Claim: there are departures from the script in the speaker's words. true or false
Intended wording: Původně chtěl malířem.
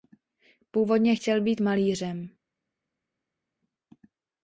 true